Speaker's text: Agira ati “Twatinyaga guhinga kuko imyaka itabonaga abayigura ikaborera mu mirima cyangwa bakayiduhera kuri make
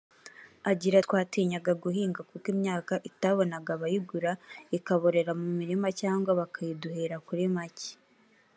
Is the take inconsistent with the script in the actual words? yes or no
yes